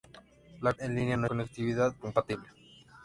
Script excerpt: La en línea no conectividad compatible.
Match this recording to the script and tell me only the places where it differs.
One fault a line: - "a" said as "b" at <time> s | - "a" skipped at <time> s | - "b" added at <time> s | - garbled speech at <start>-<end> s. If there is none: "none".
none